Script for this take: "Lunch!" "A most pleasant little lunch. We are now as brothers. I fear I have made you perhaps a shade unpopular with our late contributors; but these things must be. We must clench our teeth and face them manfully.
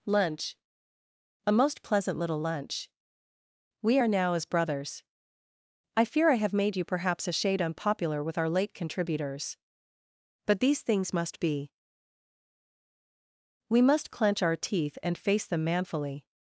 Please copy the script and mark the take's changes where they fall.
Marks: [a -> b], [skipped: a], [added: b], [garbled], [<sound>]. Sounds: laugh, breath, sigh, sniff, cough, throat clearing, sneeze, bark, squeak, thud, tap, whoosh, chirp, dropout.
"Lunch!" "A most pleasant little lunch. We are now as brothers. I fear I have made you perhaps a shade unpopular with our late contributors; but these things must be. We must clench our teeth and face them manfully.